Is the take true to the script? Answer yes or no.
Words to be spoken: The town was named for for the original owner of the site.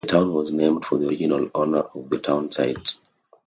no